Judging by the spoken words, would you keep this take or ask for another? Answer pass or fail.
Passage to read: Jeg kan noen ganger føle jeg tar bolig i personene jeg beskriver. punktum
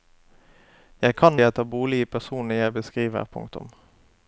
fail